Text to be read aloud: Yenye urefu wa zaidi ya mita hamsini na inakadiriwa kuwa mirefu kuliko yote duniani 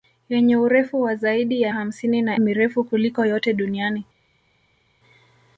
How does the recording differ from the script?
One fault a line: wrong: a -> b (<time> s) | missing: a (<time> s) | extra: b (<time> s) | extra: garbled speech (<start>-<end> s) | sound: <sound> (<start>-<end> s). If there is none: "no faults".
missing: mita (1.7 s)
missing: inakadiriwa kuwa (2.4 s)